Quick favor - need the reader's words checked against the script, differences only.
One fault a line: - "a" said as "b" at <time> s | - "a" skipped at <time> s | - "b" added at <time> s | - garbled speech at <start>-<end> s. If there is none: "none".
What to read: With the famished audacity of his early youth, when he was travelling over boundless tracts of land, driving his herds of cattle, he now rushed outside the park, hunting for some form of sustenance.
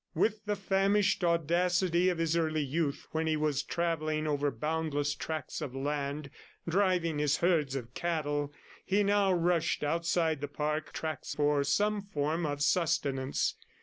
- "hunting" said as "tracts" at 10.9 s